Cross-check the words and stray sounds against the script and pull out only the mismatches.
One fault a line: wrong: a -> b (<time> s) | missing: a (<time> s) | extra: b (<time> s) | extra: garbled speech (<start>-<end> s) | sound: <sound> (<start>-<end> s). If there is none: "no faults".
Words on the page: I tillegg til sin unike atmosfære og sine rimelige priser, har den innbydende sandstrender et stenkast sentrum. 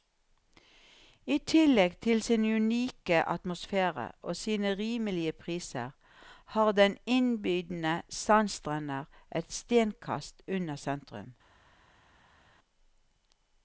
extra: unna (10.5 s)